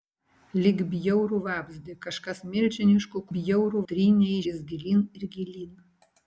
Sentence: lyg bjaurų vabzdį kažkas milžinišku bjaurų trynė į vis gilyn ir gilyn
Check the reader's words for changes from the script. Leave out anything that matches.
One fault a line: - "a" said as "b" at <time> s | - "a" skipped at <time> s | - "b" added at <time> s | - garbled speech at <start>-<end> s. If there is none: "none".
none